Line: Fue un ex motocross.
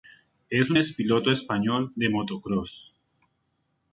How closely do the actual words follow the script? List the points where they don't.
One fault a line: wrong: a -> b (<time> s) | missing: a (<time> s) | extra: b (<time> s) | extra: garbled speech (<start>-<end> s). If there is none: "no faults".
wrong: Fue -> Es (0.5 s)
extra: piloto español de (0.9 s)